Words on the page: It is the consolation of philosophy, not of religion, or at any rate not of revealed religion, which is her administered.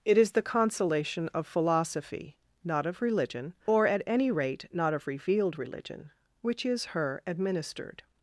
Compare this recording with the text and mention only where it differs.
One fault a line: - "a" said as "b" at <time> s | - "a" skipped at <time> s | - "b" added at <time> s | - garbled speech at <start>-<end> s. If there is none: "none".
none